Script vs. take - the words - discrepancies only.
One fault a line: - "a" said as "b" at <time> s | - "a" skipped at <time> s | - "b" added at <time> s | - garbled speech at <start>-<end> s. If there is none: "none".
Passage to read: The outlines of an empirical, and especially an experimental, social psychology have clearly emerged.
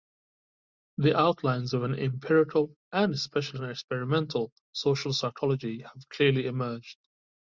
none